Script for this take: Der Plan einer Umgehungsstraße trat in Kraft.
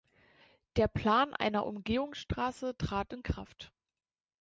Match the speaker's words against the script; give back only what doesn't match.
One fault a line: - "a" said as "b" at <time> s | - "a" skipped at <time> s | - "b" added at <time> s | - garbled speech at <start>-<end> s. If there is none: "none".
none